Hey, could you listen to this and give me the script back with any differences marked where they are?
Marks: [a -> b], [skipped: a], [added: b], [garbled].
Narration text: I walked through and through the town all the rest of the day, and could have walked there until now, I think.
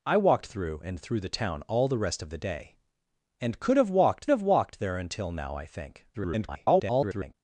I walked through and through the town all the rest of the day, and could have walked [added: have walked] there until now, I think. [garbled]